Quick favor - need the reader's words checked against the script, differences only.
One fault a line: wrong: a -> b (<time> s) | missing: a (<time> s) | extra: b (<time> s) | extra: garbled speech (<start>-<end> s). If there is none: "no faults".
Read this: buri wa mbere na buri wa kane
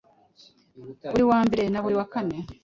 no faults